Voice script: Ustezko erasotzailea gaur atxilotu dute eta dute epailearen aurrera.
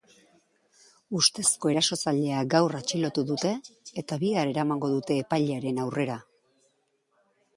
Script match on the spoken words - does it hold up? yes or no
no